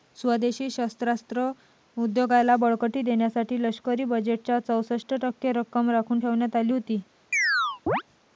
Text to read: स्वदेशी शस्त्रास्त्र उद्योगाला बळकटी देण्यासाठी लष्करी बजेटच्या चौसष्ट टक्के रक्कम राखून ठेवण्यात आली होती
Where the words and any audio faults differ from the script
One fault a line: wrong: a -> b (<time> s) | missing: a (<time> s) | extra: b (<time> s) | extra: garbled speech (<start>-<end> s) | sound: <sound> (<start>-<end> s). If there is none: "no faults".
sound: chirp (7.3-8.0 s)